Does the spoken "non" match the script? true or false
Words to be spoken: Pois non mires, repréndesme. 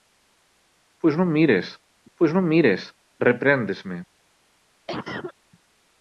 true